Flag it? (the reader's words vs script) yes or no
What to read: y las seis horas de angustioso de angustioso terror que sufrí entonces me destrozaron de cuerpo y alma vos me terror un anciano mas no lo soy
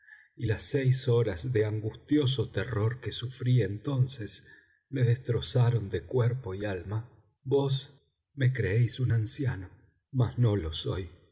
yes